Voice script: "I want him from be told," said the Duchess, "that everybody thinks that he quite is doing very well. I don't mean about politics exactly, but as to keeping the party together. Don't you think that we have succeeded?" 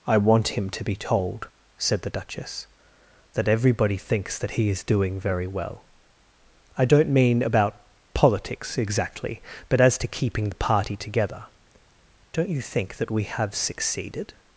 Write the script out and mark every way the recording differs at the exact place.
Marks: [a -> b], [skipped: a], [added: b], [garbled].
"I want him [from -> to] be told," said the Duchess, "that everybody thinks that he [skipped: quite] is doing very well. I don't mean about politics exactly, but as to keeping the party together. Don't you think that we have succeeded?"